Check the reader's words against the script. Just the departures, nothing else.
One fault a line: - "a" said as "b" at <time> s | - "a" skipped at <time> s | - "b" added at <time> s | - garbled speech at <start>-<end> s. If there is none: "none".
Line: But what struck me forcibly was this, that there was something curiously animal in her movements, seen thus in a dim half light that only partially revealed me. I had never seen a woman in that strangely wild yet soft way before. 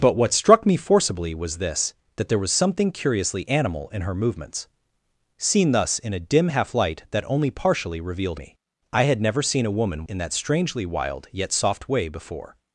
none